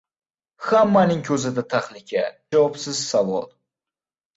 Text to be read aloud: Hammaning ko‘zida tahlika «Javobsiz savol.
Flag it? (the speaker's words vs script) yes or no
no